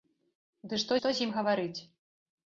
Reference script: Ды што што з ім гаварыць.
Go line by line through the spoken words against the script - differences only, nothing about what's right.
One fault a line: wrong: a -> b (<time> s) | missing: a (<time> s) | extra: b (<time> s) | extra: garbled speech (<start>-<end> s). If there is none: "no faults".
no faults